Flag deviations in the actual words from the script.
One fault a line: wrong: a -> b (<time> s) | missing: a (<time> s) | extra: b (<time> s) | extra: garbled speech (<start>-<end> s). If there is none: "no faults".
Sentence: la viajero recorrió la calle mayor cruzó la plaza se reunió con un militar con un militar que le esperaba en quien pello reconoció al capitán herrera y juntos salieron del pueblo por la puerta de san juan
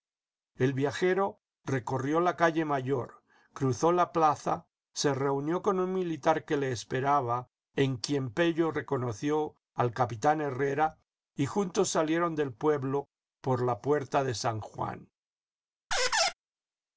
wrong: la -> el (0.6 s)
missing: con un militar (6.4 s)